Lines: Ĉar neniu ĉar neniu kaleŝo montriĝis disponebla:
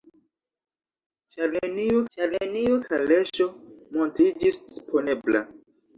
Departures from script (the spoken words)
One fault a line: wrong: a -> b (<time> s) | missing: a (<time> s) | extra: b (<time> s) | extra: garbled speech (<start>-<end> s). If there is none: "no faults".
no faults